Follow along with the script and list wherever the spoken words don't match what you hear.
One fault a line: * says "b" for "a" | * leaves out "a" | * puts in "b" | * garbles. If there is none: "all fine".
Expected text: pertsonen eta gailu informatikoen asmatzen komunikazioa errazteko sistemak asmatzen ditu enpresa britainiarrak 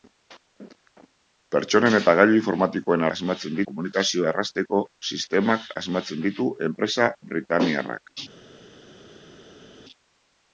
all fine